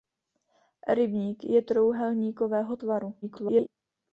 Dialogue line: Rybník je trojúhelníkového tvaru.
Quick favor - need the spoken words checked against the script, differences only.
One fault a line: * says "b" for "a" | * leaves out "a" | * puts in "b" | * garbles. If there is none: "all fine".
* garbles